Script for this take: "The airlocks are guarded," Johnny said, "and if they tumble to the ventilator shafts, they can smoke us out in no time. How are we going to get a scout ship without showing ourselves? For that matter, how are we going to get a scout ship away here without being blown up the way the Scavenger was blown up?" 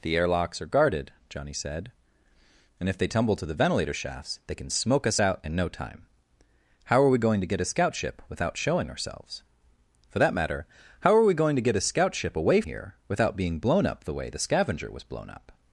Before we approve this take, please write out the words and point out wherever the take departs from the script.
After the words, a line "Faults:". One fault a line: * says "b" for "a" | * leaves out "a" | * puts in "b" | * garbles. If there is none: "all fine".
"The airlocks are guarded," Johnny said, "and if they tumble to the ventilator shafts, they can smoke us out in no time. How are we going to get a scout ship without showing ourselves? For that matter, how are we going to get a scout ship away here without being blown up the way the Scavenger was blown up?"
Faults:
all fine